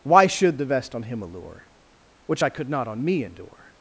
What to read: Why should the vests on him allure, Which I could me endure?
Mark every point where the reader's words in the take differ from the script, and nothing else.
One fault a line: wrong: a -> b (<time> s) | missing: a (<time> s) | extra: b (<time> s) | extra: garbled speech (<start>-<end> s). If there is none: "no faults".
wrong: vests -> vest (0.7 s)
extra: not on (2.7 s)